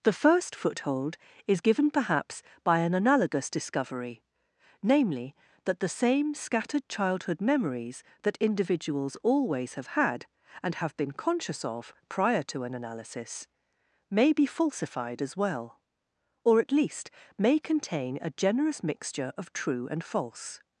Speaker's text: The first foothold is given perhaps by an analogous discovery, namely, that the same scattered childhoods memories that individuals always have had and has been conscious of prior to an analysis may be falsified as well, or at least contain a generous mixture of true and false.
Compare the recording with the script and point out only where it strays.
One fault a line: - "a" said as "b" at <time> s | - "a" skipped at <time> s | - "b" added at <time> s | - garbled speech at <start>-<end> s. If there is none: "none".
- "childhoods" said as "childhood" at 6.9 s
- "has" said as "have" at 10.8 s
- "may" added at 17.4 s